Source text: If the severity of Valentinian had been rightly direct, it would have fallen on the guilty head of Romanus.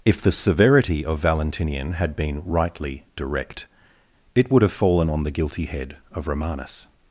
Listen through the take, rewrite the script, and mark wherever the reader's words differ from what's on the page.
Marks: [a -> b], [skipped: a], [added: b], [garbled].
If the severity of Valentinian had been rightly direct, it would have fallen on the guilty head of Romanus.